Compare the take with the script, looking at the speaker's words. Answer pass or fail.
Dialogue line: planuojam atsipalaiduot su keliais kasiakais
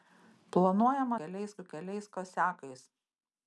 fail